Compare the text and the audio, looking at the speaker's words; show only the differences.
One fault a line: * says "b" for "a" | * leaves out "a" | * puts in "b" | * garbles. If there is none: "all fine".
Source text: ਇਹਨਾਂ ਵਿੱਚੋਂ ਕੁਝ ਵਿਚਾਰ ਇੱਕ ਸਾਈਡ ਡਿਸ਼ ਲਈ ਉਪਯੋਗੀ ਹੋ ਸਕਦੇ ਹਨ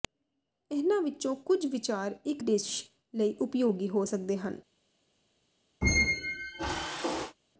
* leaves out "ਸਾਈਡ"